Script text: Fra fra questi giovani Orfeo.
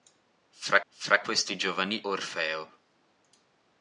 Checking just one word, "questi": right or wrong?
right